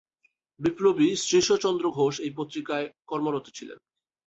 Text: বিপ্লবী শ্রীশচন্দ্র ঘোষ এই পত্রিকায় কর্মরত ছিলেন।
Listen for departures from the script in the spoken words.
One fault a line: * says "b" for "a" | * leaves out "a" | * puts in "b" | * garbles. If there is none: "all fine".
all fine